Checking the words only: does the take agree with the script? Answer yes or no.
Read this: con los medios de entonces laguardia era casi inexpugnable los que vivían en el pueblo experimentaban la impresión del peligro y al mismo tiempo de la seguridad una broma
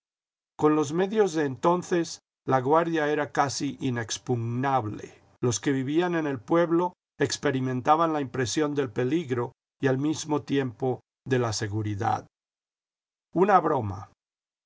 yes